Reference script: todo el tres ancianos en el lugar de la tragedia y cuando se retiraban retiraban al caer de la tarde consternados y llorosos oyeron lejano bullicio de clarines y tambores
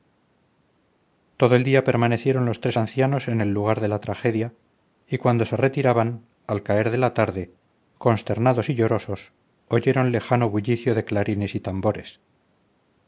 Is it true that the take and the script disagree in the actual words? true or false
true